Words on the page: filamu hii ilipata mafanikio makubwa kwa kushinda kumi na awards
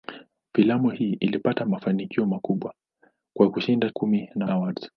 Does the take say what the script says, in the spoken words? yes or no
yes